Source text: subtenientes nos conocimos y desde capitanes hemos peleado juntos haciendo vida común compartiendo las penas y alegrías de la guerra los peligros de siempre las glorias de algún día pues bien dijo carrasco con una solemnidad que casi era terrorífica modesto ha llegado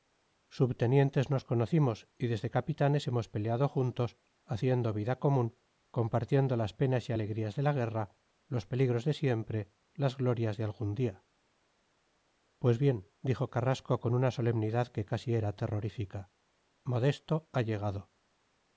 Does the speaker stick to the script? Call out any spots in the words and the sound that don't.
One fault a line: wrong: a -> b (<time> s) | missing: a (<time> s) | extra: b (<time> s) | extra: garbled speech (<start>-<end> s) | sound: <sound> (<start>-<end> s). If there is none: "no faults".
no faults